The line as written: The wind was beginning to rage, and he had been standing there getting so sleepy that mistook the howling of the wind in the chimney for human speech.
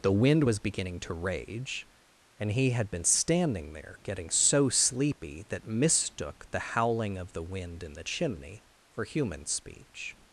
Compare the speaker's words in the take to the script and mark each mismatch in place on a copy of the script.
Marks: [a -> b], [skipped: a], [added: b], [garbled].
The wind was beginning to rage, and he had been standing there getting so sleepy that mistook the howling of the wind in the chimney for human speech.